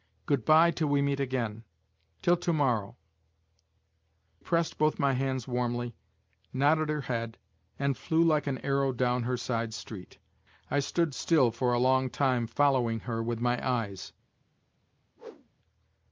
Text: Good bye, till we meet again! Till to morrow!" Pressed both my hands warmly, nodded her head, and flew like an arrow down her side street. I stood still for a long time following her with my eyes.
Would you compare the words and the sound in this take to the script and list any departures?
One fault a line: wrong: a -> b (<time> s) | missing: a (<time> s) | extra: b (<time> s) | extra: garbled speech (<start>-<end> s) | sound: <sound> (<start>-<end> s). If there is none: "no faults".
sound: whoosh (15.2-15.5 s)